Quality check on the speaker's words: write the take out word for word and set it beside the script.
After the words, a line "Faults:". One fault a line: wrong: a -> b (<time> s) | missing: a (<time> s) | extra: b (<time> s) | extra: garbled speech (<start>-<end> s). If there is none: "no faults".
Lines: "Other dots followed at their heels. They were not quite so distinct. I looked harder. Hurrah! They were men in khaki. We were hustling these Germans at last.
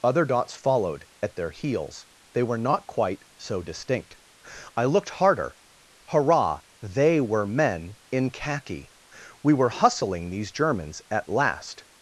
"Other dots followed at their heels. They were not quite so distinct. I looked harder. Hurrah! They were men in khaki. We were hustling these Germans at last.
Faults:
no faults